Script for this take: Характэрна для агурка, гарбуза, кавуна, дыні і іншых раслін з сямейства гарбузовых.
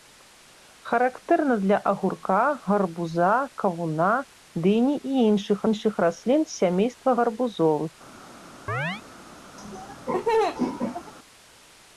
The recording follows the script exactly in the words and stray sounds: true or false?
false